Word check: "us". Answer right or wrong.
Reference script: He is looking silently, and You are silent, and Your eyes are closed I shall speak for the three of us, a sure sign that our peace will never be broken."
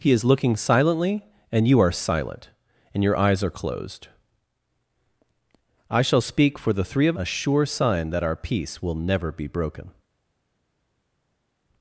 wrong